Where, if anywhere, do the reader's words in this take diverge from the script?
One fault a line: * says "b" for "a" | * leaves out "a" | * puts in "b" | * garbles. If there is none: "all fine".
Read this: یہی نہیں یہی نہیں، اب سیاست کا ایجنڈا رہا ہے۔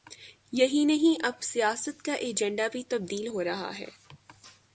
* leaves out "یہی نہیں"
* puts in "بھی تبدیل ہو"